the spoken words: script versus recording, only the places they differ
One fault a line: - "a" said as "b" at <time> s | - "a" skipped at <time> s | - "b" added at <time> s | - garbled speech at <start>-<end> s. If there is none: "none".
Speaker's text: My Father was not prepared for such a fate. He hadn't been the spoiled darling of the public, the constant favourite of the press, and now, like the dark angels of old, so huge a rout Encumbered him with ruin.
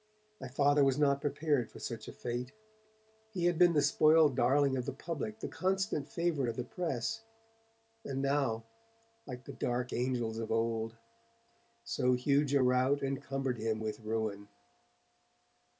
- "hadn't" said as "had" at 3.5 s